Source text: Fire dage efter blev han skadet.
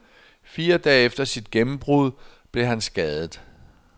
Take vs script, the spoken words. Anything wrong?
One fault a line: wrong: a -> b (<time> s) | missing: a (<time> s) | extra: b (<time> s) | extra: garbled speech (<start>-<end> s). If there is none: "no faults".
extra: sit gennembrud (1.2 s)